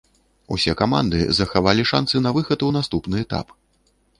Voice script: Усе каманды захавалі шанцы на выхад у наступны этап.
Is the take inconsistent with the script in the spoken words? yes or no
no